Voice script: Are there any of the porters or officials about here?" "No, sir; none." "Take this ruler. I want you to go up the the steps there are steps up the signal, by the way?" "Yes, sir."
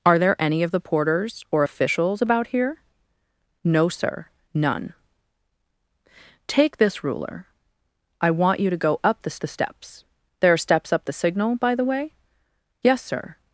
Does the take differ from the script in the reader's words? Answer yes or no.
no